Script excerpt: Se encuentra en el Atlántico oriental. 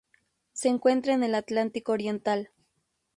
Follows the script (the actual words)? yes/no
yes